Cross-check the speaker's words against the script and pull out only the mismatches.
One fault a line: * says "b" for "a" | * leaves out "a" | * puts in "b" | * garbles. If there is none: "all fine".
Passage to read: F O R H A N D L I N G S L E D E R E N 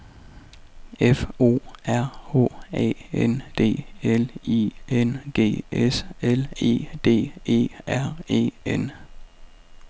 all fine